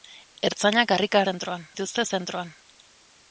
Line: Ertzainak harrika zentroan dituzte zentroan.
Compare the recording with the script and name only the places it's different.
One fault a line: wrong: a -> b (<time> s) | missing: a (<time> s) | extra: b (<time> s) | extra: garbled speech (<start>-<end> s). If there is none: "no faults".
no faults